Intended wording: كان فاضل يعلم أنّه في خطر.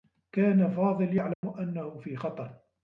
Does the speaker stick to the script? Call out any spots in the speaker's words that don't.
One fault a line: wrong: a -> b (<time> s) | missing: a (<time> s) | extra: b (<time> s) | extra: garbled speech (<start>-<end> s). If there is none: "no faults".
no faults